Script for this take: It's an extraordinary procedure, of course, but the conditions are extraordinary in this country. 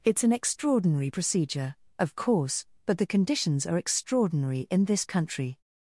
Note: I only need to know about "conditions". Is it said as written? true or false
true